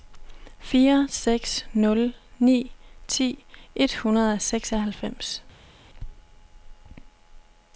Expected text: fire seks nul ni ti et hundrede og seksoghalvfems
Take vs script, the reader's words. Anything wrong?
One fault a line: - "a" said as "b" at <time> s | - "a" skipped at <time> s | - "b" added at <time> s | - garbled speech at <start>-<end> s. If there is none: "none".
none